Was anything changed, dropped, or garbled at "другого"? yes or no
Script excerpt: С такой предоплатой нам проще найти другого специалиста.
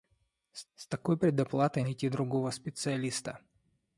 no